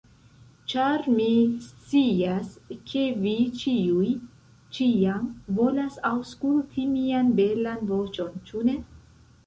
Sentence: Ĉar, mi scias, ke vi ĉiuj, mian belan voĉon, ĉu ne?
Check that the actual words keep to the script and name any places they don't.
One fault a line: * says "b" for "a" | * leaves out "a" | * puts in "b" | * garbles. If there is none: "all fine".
* puts in "ĉiam volas aŭskulti"